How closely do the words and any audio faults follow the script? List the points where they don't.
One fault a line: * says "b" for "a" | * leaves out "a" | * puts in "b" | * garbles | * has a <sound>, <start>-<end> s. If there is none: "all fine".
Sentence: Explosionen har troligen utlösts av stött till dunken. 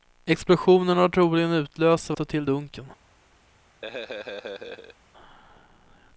* has a laugh, 3.8-5.0 s